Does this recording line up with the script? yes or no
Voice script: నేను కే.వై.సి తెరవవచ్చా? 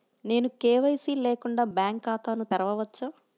no